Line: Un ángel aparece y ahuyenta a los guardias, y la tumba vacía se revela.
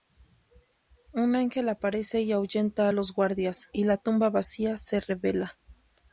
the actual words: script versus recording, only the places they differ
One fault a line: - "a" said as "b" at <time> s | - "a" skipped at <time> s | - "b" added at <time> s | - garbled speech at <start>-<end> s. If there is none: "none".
none